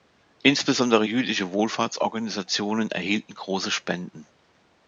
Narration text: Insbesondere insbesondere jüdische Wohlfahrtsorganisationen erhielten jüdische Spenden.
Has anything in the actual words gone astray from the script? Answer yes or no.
yes